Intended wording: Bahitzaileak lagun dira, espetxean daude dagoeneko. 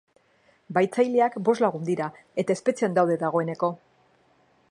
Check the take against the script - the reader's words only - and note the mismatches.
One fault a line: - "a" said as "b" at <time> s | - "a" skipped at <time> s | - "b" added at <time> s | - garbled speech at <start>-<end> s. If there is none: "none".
- "bost" added at 1.5 s
- "eta" added at 2.5 s